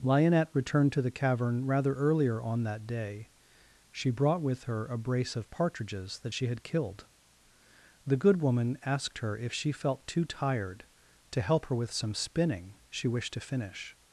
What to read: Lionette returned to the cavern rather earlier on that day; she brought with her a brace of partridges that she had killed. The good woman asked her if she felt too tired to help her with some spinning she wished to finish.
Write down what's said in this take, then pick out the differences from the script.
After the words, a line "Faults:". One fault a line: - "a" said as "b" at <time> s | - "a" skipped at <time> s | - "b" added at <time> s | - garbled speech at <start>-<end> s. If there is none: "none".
Lionette returned to the cavern rather earlier on that day; she brought with her a brace of partridges that she had killed. The good woman asked her if she felt too tired to help her with some spinning she wished to finish.
Faults:
none